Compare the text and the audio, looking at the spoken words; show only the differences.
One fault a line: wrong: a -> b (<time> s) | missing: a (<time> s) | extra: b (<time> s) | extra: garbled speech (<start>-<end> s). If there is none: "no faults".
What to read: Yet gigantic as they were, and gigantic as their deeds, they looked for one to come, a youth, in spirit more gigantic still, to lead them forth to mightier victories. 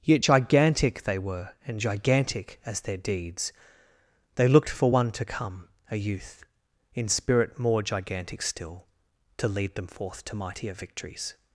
missing: as (1.0 s)